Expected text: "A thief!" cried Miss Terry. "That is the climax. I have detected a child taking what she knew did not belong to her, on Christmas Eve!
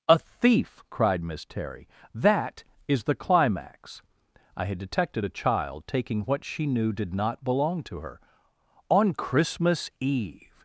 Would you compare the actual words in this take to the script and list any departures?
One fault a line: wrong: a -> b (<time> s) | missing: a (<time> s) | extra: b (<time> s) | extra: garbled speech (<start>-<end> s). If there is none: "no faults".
wrong: have -> had (4.7 s)